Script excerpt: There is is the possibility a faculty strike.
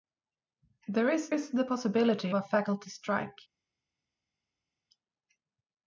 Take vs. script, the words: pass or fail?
pass